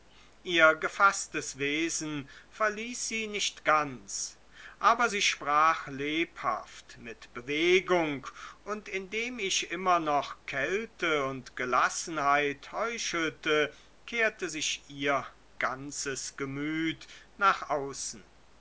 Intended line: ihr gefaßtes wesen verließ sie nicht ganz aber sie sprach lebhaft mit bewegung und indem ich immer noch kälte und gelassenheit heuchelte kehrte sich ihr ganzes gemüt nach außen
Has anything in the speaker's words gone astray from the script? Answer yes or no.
no